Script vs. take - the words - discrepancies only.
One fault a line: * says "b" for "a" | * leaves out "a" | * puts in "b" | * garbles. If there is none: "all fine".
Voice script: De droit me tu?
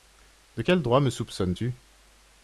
* puts in "quel"
* puts in "soupçonnes"